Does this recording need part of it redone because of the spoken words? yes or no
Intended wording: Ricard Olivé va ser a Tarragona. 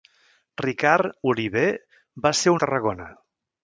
no